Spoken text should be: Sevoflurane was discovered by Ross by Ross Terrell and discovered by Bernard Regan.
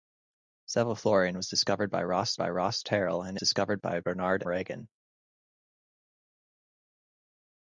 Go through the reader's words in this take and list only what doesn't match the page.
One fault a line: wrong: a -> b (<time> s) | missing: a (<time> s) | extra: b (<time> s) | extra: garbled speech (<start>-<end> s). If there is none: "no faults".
no faults